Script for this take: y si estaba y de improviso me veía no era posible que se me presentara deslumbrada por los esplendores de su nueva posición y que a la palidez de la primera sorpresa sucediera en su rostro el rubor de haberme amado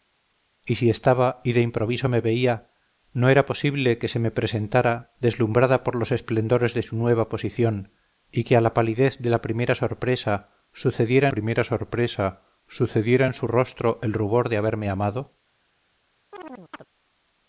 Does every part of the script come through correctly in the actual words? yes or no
no